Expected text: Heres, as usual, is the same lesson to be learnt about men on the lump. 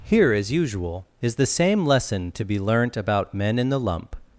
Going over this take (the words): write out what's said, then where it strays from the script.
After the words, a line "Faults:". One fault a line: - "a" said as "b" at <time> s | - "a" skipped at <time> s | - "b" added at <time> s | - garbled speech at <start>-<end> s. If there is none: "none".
Here, as usual, is the same lesson to be learnt about men in the lump.
Faults:
- "Heres" said as "Here" at 0.0 s
- "on" said as "in" at 3.6 s